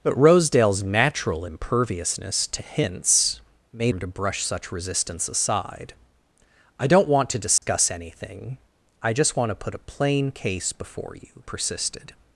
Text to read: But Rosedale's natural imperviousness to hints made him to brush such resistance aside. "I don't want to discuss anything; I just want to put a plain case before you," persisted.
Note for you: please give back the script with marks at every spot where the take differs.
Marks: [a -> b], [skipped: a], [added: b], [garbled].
But Rosedale's natural imperviousness to hints made him to brush such resistance aside. "I don't want to discuss anything; I just want to put a plain case before you," persisted.